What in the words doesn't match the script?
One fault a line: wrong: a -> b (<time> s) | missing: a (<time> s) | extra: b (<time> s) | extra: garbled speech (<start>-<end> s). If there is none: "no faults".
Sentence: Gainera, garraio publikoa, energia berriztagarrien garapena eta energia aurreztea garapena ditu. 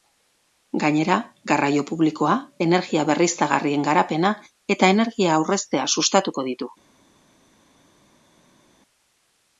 wrong: garapena -> sustatuko (6.0 s)